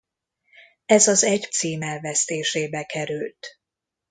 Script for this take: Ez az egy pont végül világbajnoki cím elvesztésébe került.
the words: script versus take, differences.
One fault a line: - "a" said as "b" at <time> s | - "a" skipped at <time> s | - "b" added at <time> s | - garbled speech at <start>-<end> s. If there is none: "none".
- "pont végül világbajnoki" skipped at 1.5 s